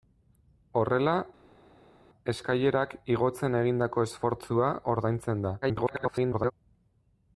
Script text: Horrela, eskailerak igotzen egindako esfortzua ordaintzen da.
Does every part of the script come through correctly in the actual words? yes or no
no